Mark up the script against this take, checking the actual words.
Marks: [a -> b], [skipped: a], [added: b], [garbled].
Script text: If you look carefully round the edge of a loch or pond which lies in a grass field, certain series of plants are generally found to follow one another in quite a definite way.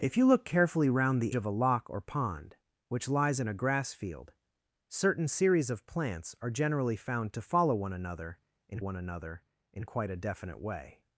If you look carefully round the [skipped: edge] of a loch or pond which lies in a grass field, certain series of plants are generally found to follow one another in [added: one another in] quite a definite way.